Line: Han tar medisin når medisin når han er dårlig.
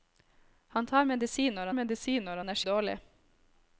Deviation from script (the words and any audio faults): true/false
false